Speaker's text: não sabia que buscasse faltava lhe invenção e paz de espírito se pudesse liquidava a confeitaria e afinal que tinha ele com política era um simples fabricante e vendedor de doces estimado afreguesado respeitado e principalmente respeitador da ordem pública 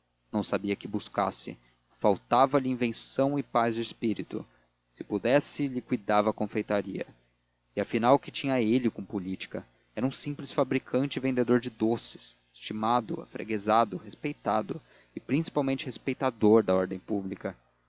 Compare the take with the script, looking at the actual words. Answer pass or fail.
pass